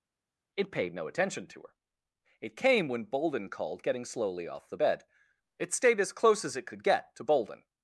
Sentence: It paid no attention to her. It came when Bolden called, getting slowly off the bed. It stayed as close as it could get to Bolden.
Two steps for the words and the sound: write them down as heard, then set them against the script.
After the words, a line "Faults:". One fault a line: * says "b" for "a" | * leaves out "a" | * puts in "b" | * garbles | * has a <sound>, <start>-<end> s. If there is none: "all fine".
It paid no attention to her. It came when Bolden called, getting slowly off the bed. It stayed as close as it could get to Bolden.
Faults:
all fine